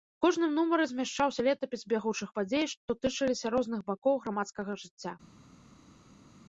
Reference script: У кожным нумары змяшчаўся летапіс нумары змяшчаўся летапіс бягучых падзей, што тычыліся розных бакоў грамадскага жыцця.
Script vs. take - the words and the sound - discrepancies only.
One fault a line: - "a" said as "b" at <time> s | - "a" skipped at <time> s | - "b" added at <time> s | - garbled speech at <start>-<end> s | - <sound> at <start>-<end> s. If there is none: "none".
- "нумары змяшчаўся летапіс" skipped at 1.8 s